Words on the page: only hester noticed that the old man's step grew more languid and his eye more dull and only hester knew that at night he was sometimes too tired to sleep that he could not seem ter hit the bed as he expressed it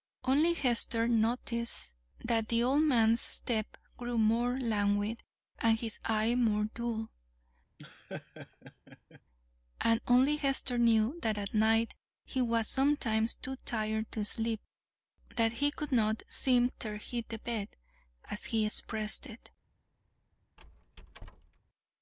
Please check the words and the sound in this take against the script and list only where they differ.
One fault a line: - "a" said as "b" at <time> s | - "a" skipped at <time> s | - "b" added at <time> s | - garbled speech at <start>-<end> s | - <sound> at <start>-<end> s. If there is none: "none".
- laugh at 7.8-9.2 s
- squeak at 20.6-21.6 s